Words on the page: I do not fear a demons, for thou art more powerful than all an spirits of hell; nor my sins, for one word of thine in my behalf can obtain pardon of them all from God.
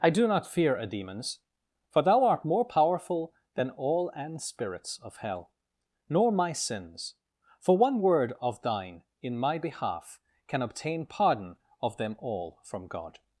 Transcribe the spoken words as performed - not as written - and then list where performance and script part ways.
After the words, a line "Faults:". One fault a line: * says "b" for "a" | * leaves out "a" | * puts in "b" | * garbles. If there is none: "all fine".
I do not fear a demons, for thou art more powerful than all an spirits of hell; nor my sins, for one word of thine in my behalf can obtain pardon of them all from God.
Faults:
all fine